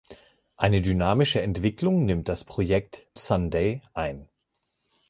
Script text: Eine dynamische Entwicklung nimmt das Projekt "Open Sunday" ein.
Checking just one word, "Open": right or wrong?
wrong